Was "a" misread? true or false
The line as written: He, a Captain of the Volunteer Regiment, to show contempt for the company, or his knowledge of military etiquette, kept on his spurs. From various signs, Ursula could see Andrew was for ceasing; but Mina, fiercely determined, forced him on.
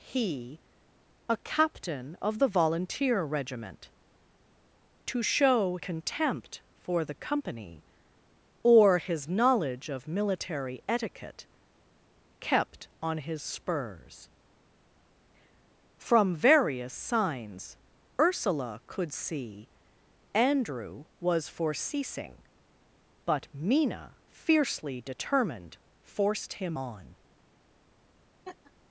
false